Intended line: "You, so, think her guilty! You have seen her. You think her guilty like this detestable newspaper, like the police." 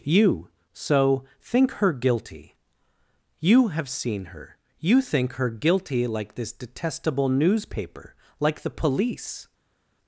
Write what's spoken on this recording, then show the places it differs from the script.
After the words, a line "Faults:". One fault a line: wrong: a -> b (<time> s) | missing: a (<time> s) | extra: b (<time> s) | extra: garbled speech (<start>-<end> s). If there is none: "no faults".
"You, so, think her guilty! You have seen her. You think her guilty like this detestable newspaper, like the police."
Faults:
no faults